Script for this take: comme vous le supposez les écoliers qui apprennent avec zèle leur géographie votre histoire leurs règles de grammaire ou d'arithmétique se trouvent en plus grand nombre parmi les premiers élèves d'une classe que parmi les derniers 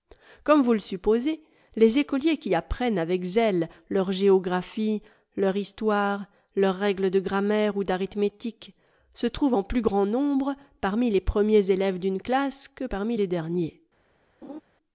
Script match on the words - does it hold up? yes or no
no